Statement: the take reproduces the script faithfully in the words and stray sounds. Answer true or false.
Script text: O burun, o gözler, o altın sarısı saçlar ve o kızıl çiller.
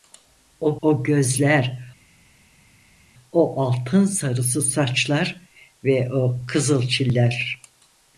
false